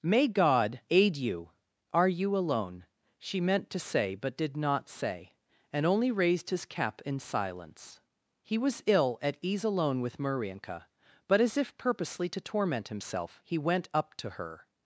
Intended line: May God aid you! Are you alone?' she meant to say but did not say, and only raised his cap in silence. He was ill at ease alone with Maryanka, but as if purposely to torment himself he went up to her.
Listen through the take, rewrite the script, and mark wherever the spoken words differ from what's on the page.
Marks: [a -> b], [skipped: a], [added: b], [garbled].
May God aid you! Are you alone?' she meant to say but did not say, and only raised his cap in silence. He was ill at ease alone with Maryanka, but as if purposely to torment himself he went up to her.